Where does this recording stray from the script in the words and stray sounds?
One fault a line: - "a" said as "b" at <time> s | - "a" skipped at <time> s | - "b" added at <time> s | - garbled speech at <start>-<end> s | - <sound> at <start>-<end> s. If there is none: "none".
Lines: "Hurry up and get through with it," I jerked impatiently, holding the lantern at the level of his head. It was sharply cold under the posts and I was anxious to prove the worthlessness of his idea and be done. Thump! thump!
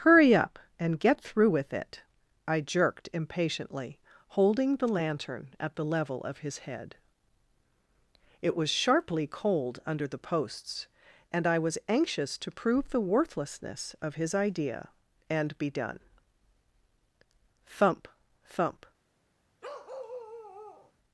- bark at 19.6-20.9 s